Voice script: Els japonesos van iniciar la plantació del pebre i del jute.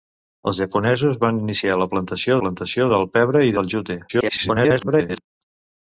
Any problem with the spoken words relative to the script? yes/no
yes